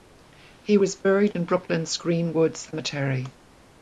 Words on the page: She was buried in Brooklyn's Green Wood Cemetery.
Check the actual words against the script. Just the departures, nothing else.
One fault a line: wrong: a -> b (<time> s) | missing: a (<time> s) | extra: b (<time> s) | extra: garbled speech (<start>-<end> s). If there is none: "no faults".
wrong: She -> He (0.7 s)